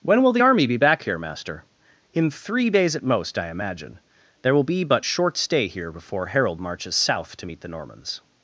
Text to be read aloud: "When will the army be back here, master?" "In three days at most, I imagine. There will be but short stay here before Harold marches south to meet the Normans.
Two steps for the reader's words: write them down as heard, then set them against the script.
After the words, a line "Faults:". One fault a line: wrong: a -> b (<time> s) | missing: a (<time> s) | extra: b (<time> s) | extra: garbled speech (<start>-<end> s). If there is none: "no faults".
"When will the army be back here, master?" "In three days at most, I imagine. There will be but short stay here before Harold marches south to meet the Normans.
Faults:
no faults